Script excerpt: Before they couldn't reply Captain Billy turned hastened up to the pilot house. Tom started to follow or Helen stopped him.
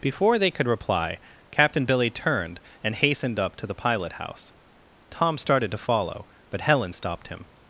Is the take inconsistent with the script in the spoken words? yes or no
yes